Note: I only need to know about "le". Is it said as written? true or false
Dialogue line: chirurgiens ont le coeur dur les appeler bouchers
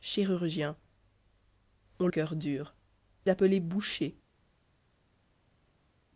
false